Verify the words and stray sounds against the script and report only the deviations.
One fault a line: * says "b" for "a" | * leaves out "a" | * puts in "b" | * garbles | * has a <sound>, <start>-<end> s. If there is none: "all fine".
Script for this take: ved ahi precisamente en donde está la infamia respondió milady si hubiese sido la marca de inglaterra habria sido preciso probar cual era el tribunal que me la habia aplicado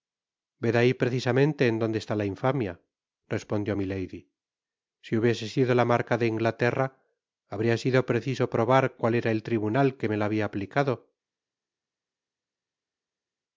all fine